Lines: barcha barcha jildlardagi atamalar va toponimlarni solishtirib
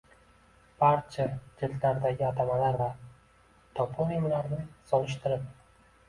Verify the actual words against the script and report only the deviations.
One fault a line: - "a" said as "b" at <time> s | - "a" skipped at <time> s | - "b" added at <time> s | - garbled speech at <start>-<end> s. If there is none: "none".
- "barcha" skipped at 1.2 s